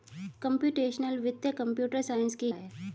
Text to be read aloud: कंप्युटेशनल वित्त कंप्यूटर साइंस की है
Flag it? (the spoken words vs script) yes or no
no